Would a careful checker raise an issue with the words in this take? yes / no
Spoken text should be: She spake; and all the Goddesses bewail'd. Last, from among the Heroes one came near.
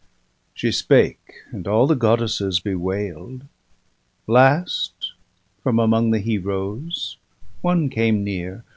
no